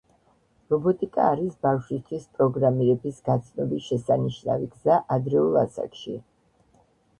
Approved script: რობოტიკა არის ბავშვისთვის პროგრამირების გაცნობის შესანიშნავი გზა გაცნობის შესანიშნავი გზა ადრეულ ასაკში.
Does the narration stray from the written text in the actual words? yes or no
yes